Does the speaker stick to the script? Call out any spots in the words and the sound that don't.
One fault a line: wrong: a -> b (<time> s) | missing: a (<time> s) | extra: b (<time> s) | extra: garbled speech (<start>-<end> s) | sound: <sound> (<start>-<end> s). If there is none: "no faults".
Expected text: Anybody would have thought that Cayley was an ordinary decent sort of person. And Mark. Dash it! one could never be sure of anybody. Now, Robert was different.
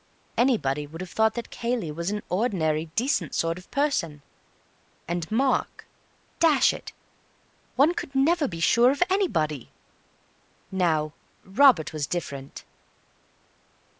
no faults